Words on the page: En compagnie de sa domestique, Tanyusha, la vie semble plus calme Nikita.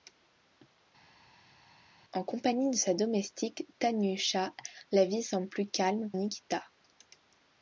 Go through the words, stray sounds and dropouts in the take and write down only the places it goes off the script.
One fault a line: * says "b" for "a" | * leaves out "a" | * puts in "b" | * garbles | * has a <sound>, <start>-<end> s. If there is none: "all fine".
all fine